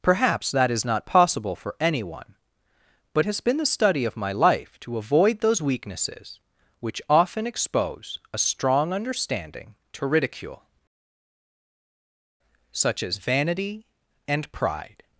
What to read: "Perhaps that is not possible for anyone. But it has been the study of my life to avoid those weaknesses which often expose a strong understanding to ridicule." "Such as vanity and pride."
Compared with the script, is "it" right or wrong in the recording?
wrong